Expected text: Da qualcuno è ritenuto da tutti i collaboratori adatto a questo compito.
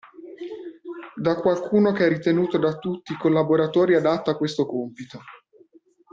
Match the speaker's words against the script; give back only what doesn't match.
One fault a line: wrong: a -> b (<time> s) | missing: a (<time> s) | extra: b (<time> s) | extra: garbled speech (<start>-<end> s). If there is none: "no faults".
extra: che (1.9 s)